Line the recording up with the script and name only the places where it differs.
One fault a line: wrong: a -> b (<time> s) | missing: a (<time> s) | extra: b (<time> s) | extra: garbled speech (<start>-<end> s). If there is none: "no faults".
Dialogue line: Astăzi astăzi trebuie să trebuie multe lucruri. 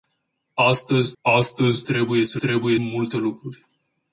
no faults